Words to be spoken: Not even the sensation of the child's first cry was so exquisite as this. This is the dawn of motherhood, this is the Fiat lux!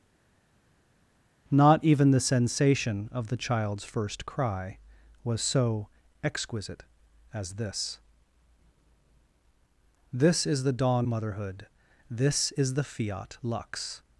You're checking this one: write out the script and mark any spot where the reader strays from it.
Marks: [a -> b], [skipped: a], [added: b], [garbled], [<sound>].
Not even the sensation of the child's first cry was so exquisite as this. This is the dawn [skipped: of] motherhood, this is the Fiat lux!